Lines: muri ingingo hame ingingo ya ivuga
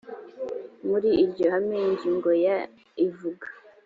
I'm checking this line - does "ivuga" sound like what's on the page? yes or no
yes